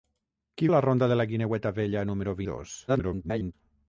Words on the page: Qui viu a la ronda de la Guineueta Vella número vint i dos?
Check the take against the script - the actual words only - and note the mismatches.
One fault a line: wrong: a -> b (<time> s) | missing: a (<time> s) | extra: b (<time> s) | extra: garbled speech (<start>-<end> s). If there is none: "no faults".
missing: viu (0.7 s)
missing: vint (2.4 s)
extra: garbled speech (2.9-3.5 s)